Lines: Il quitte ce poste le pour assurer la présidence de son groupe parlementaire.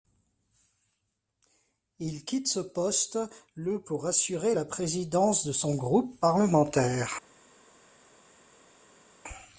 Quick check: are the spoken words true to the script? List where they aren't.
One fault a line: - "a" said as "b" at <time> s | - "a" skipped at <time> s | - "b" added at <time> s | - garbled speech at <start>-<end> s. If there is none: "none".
none